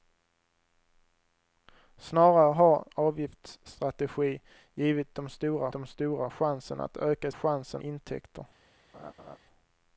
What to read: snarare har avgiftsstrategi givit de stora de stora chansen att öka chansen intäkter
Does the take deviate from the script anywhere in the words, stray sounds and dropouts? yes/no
yes